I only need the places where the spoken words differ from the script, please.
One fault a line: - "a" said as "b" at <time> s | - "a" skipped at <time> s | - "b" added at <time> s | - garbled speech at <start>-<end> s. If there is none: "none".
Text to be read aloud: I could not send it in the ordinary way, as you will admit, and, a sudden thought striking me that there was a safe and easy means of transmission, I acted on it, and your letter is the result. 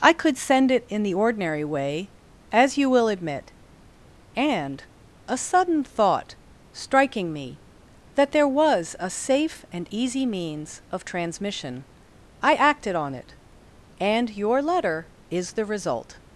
- "not" skipped at 0.4 s